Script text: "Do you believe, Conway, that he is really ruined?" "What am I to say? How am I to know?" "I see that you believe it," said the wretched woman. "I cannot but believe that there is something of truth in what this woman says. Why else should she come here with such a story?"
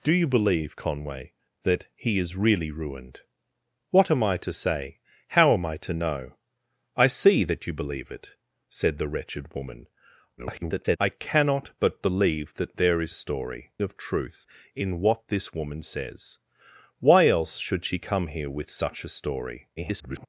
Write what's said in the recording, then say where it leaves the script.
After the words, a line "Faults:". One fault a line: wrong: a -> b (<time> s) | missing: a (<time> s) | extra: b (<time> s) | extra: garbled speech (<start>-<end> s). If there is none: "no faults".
"Do you believe, Conway, that he is really ruined?" "What am I to say? How am I to know?" "I see that you believe it," said the wretched woman. [garbled] "I cannot but believe that there is story of truth in what this woman says. Why else should she come here with such a story?" [garbled]
Faults:
extra: garbled speech (10.4-11.0 s)
wrong: something -> story (13.1 s)
extra: garbled speech (19.8-20.3 s)